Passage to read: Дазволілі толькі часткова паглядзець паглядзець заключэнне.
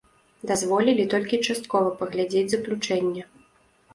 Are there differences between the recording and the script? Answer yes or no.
yes